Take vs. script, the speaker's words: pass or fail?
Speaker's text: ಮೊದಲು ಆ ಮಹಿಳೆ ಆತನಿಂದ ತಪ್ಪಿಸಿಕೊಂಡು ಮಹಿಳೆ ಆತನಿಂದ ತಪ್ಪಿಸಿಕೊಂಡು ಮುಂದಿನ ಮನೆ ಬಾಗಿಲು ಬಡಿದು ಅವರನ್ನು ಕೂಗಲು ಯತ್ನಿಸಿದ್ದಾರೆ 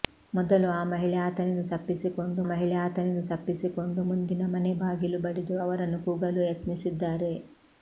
pass